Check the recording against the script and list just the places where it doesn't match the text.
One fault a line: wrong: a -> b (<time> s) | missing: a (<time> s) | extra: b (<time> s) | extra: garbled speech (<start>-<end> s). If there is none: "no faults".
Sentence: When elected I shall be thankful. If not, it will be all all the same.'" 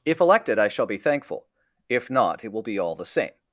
wrong: When -> If (0.1 s)
missing: all (2.9 s)